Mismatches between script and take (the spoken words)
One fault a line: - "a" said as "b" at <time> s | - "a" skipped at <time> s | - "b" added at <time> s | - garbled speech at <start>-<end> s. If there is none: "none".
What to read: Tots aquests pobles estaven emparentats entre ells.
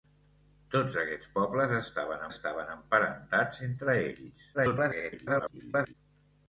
- "estaven" added at 2.3 s
- garbled speech at 4.5-5.9 s